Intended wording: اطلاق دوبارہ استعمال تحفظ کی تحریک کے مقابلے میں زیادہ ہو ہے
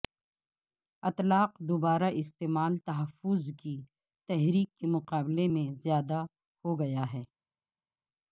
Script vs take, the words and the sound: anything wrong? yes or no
yes